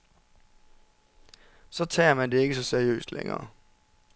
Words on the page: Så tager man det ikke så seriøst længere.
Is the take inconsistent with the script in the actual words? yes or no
no